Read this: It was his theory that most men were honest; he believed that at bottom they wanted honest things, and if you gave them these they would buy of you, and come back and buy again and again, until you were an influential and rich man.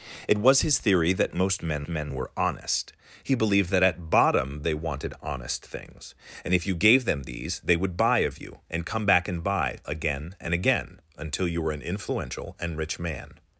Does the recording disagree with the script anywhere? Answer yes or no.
yes